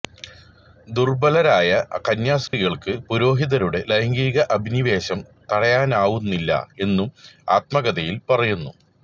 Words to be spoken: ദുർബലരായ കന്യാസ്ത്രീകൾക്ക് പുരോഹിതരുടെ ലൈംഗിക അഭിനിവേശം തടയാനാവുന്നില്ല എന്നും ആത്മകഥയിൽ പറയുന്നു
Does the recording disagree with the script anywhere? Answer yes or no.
no